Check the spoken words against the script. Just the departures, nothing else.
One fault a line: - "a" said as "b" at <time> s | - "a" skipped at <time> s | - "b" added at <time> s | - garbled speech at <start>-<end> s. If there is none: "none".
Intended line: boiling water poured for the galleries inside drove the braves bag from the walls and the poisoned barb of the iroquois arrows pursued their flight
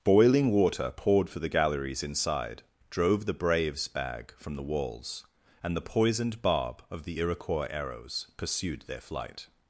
none